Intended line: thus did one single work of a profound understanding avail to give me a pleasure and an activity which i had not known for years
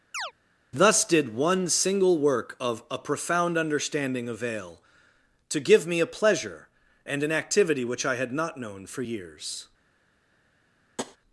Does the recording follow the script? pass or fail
pass